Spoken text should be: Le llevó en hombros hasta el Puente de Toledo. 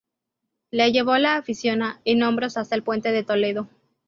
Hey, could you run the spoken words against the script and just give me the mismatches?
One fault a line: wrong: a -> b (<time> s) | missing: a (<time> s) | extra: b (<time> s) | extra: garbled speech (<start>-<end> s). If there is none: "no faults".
extra: la afición (1.2 s)